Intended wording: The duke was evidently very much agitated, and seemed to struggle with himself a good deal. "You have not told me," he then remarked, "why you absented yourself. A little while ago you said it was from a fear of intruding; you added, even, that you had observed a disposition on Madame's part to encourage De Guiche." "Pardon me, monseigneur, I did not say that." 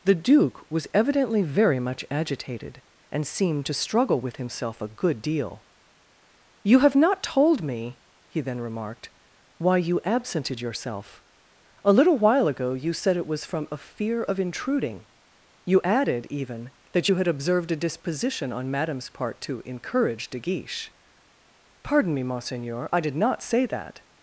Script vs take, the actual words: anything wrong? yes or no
no